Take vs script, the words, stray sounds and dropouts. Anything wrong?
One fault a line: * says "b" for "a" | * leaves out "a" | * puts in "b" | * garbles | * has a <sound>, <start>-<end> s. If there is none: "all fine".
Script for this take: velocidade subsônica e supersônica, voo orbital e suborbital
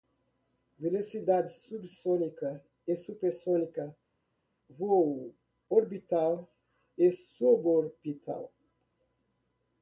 all fine